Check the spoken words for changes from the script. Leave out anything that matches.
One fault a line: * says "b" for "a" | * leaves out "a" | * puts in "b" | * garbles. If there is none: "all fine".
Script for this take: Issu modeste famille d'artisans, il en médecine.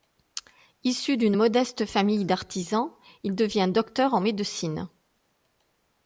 * puts in "d'une"
* puts in "devient docteur"